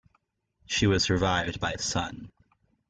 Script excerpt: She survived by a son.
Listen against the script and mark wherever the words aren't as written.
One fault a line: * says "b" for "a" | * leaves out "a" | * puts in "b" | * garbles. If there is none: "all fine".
* puts in "was"